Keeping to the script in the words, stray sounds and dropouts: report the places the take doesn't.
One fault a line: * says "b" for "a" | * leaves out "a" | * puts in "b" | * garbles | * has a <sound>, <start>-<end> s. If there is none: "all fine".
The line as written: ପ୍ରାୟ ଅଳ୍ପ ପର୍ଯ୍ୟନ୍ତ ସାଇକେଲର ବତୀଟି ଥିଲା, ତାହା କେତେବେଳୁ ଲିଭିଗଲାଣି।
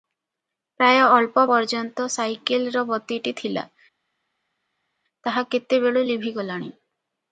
all fine